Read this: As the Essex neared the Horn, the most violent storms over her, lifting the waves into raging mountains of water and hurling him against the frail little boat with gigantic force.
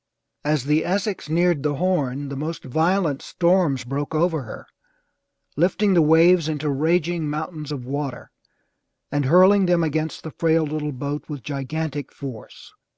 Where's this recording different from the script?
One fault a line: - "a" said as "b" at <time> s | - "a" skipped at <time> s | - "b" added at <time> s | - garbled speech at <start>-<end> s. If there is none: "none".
- "broke" added at 3.8 s
- "him" said as "them" at 9.7 s